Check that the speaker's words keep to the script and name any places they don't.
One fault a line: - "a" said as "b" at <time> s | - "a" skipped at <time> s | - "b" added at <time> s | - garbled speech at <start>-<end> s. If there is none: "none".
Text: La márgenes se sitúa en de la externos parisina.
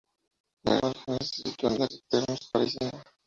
none